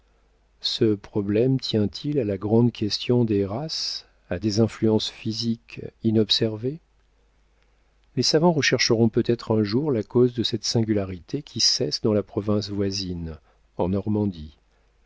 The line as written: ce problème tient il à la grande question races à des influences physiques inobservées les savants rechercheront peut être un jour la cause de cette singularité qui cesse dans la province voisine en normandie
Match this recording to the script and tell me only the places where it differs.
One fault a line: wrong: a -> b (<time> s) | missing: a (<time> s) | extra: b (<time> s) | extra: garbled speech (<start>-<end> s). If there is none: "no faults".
extra: des (3.3 s)